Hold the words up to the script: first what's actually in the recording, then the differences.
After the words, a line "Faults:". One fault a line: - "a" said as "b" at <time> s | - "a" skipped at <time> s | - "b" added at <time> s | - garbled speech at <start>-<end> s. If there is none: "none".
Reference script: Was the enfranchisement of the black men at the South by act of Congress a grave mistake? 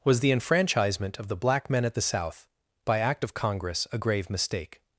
Was the enfranchisement of the black men at the South by act of Congress a grave mistake?
Faults:
none